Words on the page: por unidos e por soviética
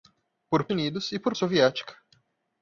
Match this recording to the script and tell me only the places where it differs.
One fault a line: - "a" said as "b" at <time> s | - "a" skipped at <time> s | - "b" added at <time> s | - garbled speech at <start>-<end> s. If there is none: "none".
none